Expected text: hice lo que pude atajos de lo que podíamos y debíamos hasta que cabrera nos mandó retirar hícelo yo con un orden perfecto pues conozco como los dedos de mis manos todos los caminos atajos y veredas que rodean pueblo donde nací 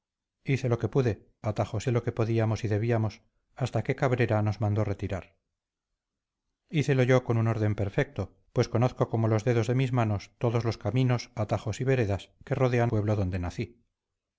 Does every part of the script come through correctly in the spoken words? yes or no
yes